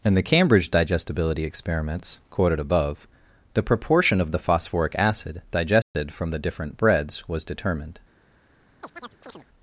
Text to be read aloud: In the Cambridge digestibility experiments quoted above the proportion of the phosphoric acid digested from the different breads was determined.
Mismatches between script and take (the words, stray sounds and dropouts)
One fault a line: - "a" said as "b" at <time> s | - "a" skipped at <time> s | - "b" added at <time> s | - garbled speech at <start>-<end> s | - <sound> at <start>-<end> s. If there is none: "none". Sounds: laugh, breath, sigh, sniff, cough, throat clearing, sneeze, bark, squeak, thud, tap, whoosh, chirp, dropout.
- dropout at 5.8-5.9 s
- chirp at 8.8-9.5 s